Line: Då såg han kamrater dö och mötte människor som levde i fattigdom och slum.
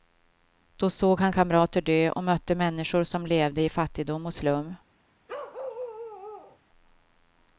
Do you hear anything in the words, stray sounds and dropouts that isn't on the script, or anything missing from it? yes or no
yes